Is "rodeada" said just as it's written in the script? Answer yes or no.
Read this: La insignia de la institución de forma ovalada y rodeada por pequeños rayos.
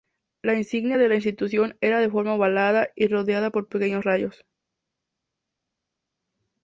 yes